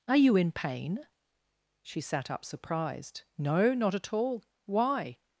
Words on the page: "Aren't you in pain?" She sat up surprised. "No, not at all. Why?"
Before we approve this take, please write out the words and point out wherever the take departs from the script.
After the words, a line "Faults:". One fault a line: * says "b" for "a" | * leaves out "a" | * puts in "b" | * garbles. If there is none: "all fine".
"Are you in pain?" She sat up surprised. "No, not at all. Why?"
Faults:
* says "Are" for "Aren't"